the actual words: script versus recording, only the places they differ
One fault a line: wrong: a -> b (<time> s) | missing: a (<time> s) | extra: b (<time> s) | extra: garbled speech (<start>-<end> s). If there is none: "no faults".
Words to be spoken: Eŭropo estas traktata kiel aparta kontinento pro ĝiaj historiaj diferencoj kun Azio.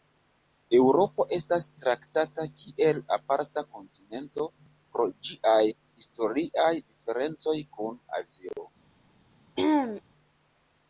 no faults